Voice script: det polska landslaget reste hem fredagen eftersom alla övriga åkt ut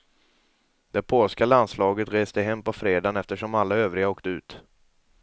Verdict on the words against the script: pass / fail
fail